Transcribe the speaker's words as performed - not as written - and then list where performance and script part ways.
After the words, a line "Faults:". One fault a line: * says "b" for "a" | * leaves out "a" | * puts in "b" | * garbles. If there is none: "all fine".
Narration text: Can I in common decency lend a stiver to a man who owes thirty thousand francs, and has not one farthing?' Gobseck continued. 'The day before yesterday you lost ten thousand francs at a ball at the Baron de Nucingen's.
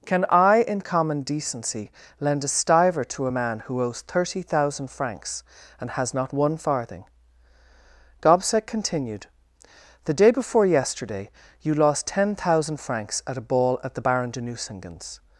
Can I in common decency lend a stiver to a man who owes thirty thousand francs, and has not one farthing?' Gobseck continued. 'The day before yesterday you lost ten thousand francs at a ball at the Baron de Nucingen's.
Faults:
all fine